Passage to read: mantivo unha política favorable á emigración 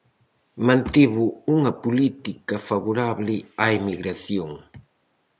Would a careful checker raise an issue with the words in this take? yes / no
no